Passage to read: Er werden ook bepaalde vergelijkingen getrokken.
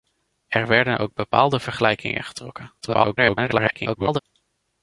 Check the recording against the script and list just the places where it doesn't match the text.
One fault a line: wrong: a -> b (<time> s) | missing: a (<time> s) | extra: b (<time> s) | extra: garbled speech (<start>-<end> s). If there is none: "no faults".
extra: garbled speech (2.8-4.2 s)